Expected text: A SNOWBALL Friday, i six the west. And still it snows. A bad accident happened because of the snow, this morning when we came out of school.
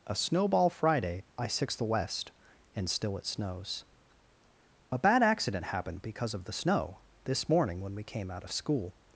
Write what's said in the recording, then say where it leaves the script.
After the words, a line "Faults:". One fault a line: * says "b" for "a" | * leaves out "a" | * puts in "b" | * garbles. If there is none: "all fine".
A SNOWBALL Friday, i six the west. And still it snows. A bad accident happened because of the snow, this morning when we came out of school.
Faults:
all fine